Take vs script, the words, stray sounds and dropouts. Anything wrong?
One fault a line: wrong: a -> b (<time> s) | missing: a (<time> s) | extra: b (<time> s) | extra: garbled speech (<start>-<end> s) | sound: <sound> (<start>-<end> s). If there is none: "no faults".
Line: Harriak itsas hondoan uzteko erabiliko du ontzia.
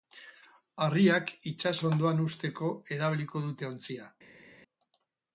wrong: du -> dute (3.5 s)